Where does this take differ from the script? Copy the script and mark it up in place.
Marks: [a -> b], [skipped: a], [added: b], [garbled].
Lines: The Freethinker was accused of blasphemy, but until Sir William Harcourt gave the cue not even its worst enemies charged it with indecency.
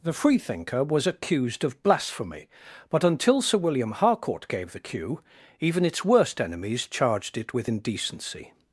The Freethinker was accused of blasphemy, but until Sir William Harcourt gave the cue [skipped: not] even its worst enemies charged it with indecency.